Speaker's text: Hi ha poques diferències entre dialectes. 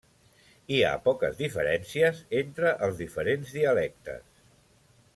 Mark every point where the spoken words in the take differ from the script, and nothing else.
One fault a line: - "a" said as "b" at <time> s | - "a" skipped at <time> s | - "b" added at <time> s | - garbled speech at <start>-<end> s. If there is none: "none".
- "els diferents" added at 2.9 s